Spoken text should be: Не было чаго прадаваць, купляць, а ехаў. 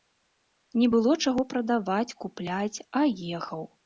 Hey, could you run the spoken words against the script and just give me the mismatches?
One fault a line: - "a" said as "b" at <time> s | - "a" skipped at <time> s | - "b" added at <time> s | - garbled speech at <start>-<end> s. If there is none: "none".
none